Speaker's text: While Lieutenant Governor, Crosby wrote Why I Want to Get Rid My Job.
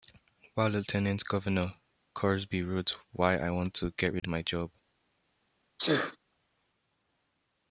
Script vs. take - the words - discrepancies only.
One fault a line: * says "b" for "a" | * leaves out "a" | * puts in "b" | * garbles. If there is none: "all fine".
all fine